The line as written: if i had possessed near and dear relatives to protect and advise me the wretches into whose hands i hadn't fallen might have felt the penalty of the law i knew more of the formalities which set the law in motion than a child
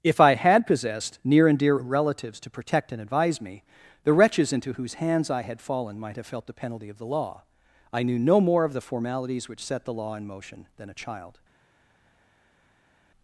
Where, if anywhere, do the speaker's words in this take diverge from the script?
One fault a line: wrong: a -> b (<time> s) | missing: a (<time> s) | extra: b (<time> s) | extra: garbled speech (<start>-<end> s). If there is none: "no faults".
wrong: hadn't -> had (5.4 s)
extra: no (8.2 s)